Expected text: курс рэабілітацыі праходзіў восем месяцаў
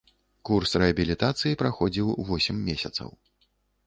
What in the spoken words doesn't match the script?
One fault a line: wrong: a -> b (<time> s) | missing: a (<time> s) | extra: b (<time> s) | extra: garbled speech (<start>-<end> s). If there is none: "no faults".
no faults